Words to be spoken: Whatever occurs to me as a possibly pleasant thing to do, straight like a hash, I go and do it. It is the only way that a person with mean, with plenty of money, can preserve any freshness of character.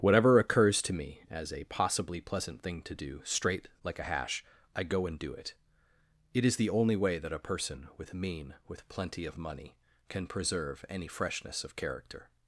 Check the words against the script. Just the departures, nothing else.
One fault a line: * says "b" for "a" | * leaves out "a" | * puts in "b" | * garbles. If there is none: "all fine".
all fine